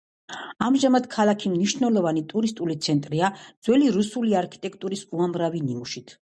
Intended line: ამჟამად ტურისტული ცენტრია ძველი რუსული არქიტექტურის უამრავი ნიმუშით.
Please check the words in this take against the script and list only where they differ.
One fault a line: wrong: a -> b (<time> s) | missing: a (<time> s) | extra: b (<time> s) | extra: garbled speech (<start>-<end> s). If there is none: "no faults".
extra: ქალაქი მნიშვნელოვანი (1.1 s)